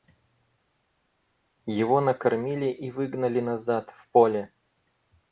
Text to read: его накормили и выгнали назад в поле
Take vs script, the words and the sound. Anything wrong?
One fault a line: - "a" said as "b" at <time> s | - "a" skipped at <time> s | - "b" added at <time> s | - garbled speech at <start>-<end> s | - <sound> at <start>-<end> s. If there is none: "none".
none